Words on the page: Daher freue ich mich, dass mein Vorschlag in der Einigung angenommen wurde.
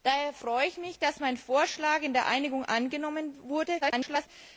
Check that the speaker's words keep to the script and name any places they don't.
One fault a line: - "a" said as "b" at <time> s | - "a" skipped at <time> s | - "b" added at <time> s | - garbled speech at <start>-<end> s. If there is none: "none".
- garbled speech at 3.8-4.3 s